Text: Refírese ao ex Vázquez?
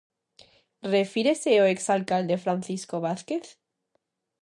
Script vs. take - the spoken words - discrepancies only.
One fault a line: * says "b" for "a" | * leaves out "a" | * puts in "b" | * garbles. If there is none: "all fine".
* puts in "alcalde Francisco"